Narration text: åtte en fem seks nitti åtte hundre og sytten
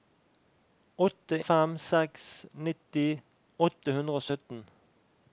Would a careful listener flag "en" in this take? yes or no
yes